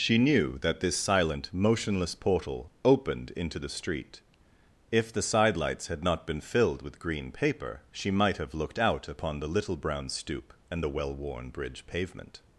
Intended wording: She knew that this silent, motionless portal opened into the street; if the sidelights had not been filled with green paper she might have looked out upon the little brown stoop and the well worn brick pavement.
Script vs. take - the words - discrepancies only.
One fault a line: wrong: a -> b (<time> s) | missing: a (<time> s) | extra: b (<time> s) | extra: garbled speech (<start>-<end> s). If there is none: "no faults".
wrong: brick -> bridge (11.5 s)